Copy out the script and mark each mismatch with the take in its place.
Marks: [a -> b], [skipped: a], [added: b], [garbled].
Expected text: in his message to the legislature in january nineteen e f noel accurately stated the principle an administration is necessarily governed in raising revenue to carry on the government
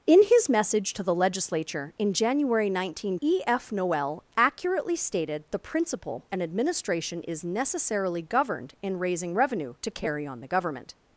in his message to the legislature in january nineteen e f noel accurately stated the principle an administration is necessarily governed in raising revenue to carry on the government